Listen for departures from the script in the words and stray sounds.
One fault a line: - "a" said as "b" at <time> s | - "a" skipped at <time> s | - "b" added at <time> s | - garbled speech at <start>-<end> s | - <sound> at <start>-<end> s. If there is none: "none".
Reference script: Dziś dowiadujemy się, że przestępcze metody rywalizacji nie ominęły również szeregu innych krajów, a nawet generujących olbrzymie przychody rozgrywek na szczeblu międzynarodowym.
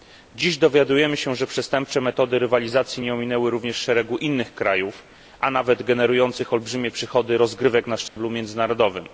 - dropout at 8.1-8.2 s